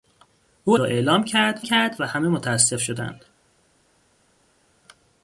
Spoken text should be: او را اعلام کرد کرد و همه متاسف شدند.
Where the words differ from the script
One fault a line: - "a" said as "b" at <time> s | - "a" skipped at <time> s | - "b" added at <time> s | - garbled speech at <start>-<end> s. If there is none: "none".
none